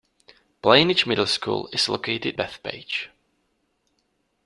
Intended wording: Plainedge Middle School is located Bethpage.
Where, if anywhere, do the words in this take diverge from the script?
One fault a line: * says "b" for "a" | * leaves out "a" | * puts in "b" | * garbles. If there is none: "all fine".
all fine